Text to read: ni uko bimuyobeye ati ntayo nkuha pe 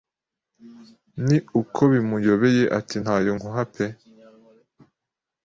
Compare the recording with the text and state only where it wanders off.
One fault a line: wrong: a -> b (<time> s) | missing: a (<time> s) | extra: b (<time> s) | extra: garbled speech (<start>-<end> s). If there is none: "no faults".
no faults